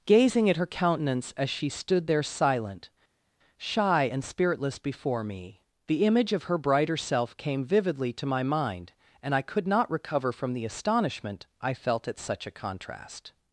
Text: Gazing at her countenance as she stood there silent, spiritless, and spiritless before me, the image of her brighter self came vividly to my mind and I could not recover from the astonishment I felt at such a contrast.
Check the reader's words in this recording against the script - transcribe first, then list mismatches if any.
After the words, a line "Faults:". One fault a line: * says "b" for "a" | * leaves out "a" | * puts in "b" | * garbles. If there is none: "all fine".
Gazing at her countenance as she stood there silent, shy, and spiritless before me, the image of her brighter self came vividly to my mind and I could not recover from the astonishment I felt at such a contrast.
Faults:
* says "shy" for "spiritless"